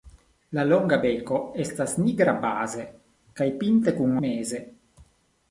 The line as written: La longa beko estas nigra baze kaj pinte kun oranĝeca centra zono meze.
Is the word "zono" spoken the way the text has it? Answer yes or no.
no